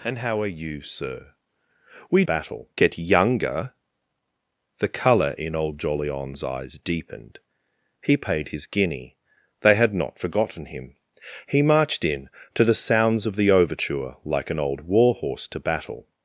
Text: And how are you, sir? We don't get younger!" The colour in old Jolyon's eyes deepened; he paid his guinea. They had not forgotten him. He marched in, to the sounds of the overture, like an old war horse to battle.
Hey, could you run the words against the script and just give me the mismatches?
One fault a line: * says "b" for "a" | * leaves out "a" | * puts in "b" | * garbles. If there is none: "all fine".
* says "battle" for "don't"